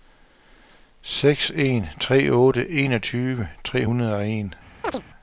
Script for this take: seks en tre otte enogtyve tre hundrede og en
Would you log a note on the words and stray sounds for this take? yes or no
yes